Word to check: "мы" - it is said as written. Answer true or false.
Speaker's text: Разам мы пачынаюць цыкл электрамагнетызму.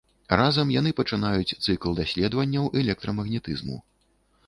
false